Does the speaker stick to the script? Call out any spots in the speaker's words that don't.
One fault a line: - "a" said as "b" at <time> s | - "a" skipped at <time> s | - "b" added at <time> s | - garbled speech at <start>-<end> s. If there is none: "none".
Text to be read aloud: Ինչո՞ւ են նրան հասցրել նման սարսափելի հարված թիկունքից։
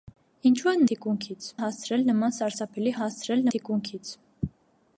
- "նրան" said as "թիկունքից" at 0.9 s
- "հարված" said as "հասցրել" at 3.0 s